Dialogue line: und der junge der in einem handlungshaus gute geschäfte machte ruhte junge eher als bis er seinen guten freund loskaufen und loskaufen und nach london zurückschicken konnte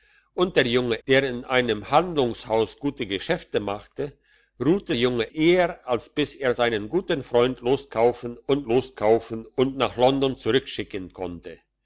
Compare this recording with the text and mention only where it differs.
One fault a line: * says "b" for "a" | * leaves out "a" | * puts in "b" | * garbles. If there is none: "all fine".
all fine